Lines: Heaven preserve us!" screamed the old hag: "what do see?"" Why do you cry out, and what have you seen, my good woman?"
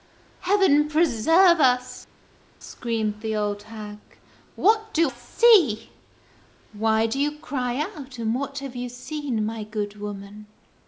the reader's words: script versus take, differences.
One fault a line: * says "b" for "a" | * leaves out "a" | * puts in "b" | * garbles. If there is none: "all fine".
all fine